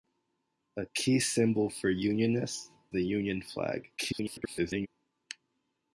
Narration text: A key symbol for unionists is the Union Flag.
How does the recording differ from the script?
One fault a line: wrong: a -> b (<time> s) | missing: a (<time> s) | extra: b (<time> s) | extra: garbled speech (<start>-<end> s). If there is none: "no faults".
missing: is (2.7 s)
extra: garbled speech (4.0-4.9 s)